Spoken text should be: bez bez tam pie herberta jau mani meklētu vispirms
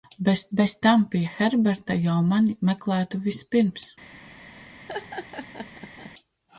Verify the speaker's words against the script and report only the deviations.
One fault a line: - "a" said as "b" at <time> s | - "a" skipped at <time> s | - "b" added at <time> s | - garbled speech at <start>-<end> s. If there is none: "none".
none